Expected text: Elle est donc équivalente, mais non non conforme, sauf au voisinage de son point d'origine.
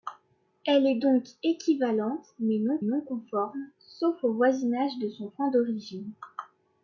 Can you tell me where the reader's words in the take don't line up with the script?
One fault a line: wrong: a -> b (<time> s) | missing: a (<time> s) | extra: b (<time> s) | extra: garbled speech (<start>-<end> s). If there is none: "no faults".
no faults